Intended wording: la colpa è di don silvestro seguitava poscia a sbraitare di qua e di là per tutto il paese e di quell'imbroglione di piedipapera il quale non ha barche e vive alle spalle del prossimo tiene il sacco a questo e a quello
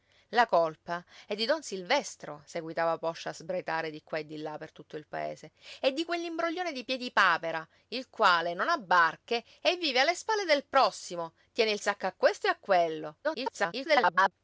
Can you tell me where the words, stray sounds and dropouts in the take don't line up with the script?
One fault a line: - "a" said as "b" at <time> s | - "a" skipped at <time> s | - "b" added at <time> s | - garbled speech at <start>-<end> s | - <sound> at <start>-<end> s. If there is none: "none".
- garbled speech at 13.2-14.3 s